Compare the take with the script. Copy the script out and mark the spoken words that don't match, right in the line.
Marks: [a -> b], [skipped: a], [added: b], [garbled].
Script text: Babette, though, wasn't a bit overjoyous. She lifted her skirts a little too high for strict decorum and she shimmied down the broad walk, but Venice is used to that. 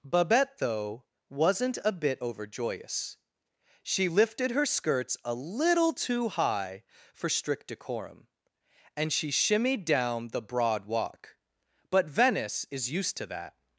Babette, though, wasn't a bit overjoyous. She lifted her skirts a little too high for strict decorum and she shimmied down the broad walk, but Venice is used to that.